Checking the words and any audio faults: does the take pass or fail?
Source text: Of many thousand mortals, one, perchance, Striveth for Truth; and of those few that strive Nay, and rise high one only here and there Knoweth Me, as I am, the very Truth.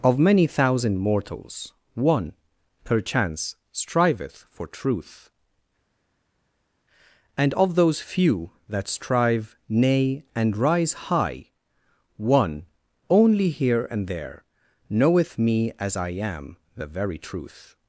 pass